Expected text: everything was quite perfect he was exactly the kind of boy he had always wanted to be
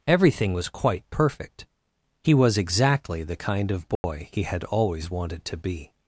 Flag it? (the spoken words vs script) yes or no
no